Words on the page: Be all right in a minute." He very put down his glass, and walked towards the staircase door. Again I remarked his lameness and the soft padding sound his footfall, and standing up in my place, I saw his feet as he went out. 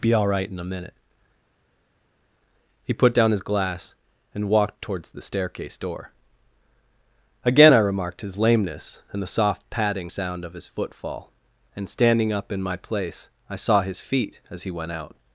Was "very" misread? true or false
true